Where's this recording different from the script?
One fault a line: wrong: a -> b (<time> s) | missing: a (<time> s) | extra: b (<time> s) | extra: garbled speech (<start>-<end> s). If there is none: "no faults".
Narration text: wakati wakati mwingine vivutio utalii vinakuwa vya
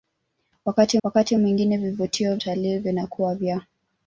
no faults